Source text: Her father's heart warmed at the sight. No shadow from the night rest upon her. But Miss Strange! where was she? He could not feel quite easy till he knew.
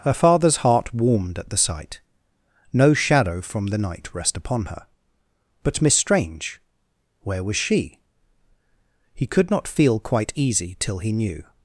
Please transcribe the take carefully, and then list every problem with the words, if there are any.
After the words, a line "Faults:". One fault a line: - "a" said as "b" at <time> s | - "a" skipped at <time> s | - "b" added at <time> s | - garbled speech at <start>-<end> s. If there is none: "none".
Her father's heart warmed at the sight. No shadow from the night rest upon her. But Miss Strange! where was she? He could not feel quite easy till he knew.
Faults:
none